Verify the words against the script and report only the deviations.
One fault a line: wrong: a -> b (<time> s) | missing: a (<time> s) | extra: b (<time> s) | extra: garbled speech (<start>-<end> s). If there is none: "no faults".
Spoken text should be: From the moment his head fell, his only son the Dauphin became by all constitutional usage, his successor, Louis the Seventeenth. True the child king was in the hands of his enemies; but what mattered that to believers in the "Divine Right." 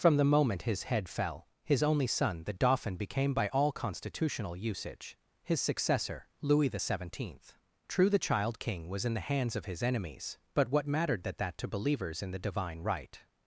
extra: that (11.4 s)